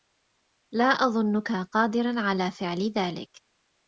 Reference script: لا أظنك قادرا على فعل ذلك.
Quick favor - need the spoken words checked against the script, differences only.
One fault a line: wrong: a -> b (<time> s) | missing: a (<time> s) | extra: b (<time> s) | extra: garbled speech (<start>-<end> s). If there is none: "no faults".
no faults